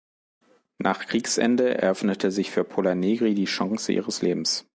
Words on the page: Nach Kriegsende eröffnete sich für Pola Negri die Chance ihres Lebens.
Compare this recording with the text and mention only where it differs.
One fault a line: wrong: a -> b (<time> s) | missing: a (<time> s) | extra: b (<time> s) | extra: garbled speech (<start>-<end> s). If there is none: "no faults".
no faults